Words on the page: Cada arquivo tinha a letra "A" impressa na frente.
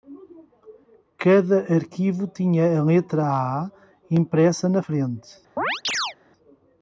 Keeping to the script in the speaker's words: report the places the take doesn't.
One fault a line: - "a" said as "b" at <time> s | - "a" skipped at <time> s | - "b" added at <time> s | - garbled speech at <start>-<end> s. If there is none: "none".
none